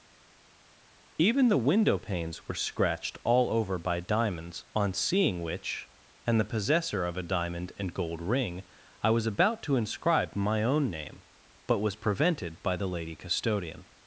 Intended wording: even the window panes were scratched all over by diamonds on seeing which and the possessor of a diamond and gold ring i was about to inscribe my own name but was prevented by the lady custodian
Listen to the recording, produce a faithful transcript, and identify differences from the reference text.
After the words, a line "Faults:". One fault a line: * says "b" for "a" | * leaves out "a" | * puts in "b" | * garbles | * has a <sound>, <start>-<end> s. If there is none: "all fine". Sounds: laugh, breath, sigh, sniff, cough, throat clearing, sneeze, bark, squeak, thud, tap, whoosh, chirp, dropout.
even the window panes were scratched all over by diamonds on seeing which and the possessor of a diamond and gold ring i was about to inscribe my own name but was prevented by the lady custodian
Faults:
all fine